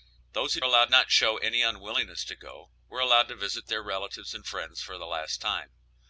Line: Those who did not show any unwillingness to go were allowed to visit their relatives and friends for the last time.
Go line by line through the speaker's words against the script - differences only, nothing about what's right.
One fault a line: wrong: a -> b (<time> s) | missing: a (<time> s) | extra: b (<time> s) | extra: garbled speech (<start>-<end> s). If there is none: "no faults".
wrong: did -> allowed (0.6 s)